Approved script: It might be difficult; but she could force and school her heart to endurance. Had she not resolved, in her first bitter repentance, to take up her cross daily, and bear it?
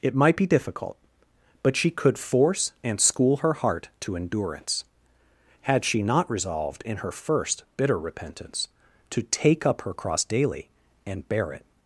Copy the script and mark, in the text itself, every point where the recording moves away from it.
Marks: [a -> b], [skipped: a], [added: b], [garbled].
It might be difficult; but she could force and school her heart to endurance. Had she not resolved, in her first bitter repentance, to take up her cross daily, and bear it?